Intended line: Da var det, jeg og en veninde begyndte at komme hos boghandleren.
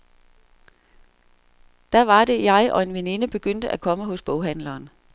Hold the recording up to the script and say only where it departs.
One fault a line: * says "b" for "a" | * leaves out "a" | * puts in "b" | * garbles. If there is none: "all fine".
all fine